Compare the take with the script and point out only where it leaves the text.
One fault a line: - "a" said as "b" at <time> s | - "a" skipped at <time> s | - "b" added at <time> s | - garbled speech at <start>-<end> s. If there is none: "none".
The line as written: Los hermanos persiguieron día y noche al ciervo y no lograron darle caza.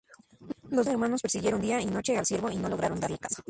none